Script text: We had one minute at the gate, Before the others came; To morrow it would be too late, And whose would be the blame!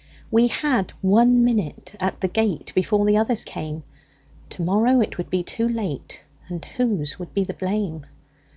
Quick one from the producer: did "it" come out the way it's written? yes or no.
yes